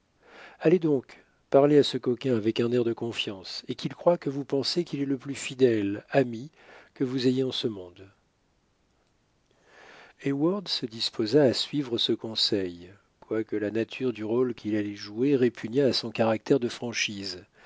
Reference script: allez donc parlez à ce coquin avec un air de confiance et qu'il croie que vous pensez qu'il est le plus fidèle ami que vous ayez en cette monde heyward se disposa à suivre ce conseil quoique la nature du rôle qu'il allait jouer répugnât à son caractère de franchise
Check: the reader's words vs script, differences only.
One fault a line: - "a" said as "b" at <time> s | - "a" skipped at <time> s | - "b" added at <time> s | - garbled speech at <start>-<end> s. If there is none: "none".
- "cette" said as "ce" at 7.5 s